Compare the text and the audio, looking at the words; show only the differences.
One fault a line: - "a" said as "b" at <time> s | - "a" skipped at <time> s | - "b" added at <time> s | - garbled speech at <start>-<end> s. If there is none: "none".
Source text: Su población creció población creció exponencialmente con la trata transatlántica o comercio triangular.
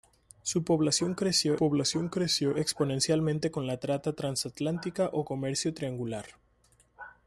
none